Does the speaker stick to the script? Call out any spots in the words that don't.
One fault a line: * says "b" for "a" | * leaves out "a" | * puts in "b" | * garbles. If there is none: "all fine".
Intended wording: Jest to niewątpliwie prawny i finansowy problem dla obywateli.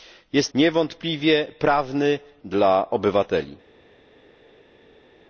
* leaves out "to"
* leaves out "i finansowy problem"